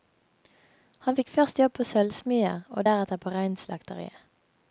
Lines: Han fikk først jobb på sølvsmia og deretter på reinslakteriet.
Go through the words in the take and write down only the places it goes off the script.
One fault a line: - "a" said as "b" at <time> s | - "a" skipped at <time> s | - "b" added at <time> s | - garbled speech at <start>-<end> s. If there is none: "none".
none